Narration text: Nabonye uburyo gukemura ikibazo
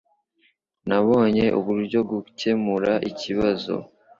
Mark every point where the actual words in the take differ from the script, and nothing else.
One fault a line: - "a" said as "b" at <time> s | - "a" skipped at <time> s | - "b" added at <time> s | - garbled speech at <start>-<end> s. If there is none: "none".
none